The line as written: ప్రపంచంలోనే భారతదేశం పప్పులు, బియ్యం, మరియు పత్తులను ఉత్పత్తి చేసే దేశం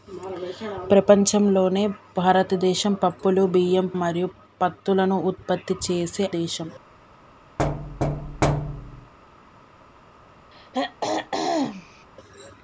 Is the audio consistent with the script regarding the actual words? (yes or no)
yes